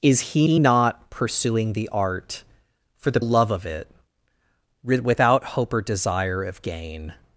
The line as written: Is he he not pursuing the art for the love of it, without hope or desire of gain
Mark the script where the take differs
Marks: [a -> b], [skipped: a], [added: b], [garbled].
Is he he not pursuing the art for the love of it, without hope or desire of gain